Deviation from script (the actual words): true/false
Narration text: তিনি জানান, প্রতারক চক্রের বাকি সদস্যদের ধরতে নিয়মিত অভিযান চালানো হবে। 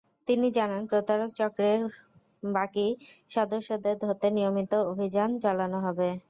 false